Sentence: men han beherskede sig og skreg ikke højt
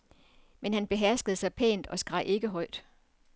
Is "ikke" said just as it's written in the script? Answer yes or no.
yes